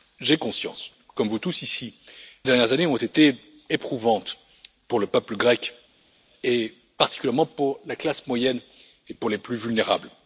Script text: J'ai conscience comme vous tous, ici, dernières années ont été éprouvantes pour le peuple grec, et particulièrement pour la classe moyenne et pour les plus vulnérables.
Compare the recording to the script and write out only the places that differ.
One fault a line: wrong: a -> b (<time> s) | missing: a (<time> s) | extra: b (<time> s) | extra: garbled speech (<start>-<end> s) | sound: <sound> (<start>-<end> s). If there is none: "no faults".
no faults